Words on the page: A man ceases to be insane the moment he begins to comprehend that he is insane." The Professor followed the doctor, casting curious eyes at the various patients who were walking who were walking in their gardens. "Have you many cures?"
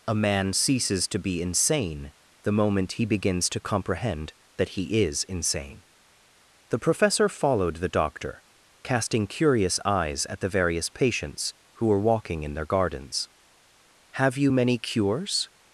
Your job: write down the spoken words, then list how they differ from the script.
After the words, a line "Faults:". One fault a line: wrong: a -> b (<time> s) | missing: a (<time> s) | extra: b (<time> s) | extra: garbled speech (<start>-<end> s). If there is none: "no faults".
A man ceases to be insane the moment he begins to comprehend that he is insane." The Professor followed the doctor, casting curious eyes at the various patients who were walking in their gardens. "Have you many cures?"
Faults:
missing: who were walking (12.4 s)